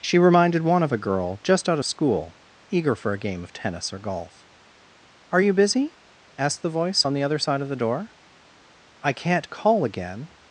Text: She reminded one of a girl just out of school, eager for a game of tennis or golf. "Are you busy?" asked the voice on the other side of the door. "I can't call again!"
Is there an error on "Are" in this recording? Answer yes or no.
no